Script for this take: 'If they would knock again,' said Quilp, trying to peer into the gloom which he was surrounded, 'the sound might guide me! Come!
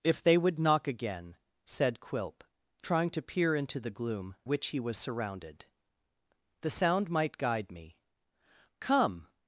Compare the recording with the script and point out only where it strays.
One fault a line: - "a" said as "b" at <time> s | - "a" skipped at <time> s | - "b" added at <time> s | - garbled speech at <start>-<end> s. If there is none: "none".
none